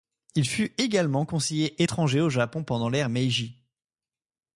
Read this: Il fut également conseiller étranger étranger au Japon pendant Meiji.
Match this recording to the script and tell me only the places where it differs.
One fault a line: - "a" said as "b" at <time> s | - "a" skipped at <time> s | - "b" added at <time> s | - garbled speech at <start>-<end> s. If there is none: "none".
- "étranger" skipped at 2.2 s
- "l'ère" added at 2.9 s